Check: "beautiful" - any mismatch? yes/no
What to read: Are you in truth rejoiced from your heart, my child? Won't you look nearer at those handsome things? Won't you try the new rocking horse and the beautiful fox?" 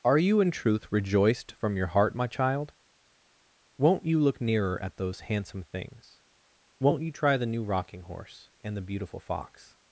no